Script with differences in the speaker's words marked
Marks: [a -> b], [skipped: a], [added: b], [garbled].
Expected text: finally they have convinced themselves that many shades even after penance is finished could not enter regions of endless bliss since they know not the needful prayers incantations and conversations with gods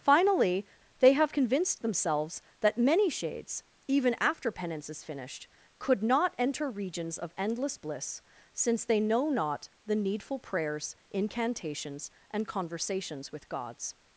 finally they have convinced themselves that many shades even after penance is finished could not enter regions of endless bliss since they know not the needful prayers incantations and conversations with gods